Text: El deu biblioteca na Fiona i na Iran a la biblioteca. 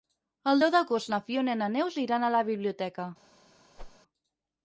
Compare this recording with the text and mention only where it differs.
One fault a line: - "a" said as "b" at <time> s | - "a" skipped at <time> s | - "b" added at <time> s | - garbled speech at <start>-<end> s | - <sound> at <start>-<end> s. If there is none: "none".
- "biblioteca" said as "d'agost" at 0.7 s
- "Neus" added at 1.7 s
- whoosh at 3.8-4.0 s